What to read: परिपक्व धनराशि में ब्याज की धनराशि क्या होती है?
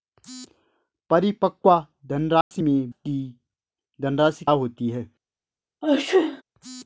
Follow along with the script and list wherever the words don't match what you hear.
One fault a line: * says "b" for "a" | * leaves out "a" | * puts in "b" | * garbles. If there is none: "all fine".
* leaves out "ब्याज"
* leaves out "क्या"